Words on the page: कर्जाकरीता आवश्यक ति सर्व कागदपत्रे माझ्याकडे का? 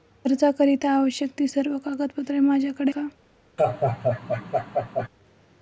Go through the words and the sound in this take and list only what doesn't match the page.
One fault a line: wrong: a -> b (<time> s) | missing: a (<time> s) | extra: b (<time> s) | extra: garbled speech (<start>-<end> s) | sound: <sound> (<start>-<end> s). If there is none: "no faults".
sound: laugh (3.6-5.1 s)